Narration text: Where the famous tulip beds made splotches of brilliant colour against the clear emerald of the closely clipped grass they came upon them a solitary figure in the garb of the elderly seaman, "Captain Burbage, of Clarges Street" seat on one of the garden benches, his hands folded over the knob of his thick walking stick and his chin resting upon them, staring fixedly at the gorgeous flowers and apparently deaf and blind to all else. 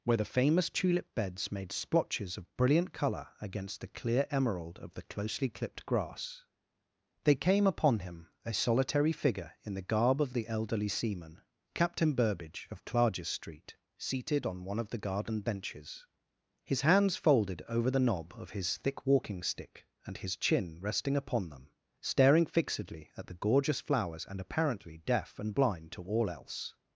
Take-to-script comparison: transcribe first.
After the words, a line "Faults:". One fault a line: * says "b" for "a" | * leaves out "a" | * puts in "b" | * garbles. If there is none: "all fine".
Where the famous tulip beds made splotches of brilliant colour against the clear emerald of the closely clipped grass they came upon him a solitary figure in the garb of the elderly seaman, "Captain Burbage, of Clarges Street" seated on one of the garden benches, his hands folded over the knob of his thick walking stick and his chin resting upon them, staring fixedly at the gorgeous flowers and apparently deaf and blind to all else.
Faults:
* says "him" for "them"
* says "seated" for "seat"